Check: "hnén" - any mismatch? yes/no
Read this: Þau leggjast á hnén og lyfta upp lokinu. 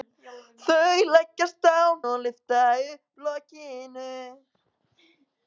yes